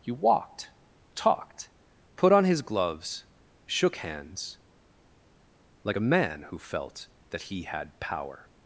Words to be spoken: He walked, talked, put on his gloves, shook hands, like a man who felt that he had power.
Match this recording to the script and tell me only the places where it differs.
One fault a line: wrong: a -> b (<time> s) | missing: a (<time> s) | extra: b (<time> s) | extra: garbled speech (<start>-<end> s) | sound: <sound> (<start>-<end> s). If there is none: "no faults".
no faults